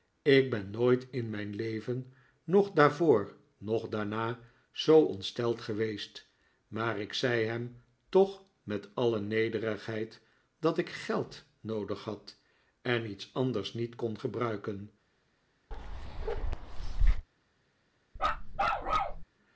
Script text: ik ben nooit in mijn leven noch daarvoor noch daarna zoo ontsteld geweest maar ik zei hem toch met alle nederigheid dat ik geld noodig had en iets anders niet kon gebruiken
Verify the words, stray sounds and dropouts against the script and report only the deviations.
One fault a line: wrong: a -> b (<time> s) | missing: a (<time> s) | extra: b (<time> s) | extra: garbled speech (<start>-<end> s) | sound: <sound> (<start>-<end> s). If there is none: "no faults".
sound: bark (15.7-17.3 s)
sound: bark (18.2-19.2 s)